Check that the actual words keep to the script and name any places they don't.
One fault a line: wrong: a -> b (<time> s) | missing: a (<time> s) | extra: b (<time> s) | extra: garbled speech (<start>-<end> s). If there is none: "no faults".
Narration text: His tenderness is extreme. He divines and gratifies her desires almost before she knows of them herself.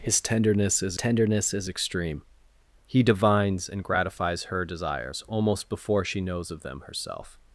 extra: tenderness is (0.9 s)